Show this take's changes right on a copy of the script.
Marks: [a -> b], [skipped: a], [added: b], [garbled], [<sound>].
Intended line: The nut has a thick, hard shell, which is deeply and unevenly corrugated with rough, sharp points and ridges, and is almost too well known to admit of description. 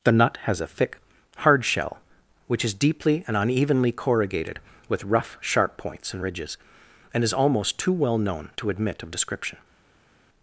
The nut has a thick, hard shell, which is deeply and unevenly corrugated with rough, sharp points and ridges, and is almost too well known to admit of description.